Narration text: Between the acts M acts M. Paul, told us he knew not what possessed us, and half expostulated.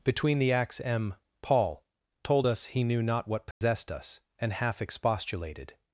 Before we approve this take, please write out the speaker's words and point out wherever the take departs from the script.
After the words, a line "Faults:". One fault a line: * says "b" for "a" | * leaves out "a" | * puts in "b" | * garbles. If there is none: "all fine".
Between the acts M. Paul, told us he knew not what possessed us, and half expostulated.
Faults:
* leaves out "acts M"